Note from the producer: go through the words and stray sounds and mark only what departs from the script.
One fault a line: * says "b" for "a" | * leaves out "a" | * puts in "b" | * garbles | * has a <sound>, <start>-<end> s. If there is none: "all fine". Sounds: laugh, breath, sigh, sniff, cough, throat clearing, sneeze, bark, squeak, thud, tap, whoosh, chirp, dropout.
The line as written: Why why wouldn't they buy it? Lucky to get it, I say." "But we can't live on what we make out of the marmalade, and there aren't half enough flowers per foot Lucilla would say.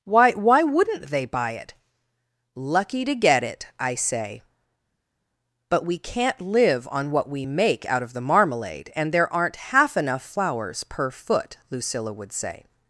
all fine